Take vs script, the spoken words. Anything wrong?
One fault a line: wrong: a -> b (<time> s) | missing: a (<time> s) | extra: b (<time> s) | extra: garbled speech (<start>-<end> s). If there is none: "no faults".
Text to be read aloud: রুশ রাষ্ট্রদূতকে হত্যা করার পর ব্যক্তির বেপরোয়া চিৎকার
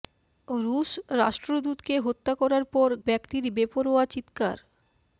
no faults